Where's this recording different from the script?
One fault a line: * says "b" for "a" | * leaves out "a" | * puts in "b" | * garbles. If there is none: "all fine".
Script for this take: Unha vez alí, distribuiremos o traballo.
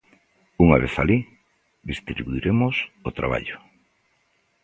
all fine